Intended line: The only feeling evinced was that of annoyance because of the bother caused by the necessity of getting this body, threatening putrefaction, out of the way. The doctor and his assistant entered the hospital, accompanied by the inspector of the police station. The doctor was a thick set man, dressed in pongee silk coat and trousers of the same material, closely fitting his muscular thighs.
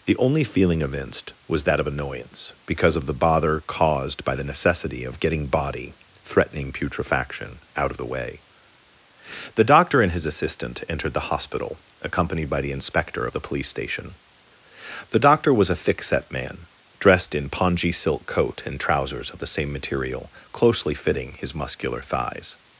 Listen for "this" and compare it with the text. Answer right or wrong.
wrong